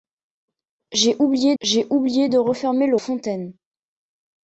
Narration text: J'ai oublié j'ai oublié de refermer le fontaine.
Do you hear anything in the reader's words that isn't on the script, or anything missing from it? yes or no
no